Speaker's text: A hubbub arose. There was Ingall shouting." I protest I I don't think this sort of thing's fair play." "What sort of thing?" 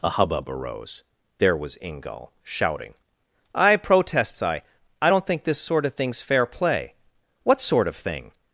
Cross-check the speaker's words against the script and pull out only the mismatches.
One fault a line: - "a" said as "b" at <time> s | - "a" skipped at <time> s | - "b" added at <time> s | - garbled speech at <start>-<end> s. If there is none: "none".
- "protest" said as "protests" at 3.8 s